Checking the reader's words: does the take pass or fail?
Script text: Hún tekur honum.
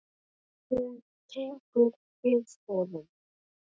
fail